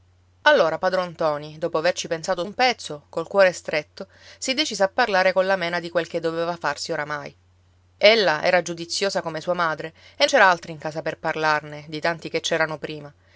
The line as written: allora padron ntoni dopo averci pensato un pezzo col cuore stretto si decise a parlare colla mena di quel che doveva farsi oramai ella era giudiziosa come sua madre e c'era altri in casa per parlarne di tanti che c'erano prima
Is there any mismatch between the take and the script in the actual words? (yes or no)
no